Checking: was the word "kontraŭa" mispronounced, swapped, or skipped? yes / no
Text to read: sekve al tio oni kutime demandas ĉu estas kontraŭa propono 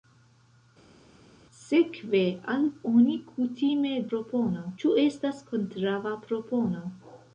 no